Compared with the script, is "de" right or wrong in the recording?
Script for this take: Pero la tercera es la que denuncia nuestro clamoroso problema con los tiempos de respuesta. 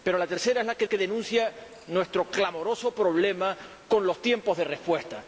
right